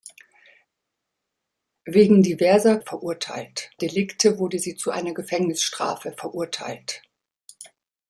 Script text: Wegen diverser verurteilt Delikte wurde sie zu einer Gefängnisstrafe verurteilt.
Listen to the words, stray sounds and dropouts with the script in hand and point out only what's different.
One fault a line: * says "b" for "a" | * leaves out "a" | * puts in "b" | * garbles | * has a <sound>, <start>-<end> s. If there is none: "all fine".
all fine